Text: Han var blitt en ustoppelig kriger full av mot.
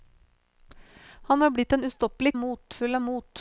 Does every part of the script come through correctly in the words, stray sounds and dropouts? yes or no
no